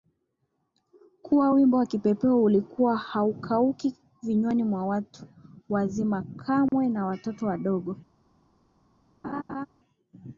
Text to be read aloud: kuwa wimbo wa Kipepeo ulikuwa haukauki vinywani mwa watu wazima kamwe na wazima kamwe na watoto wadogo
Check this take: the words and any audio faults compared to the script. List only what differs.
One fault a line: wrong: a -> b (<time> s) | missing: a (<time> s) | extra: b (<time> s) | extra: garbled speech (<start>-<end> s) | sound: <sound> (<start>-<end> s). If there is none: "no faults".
sound: dropout (6.7-6.7 s)
missing: wazima kamwe na (7.1 s)
sound: laugh (9.2-9.7 s)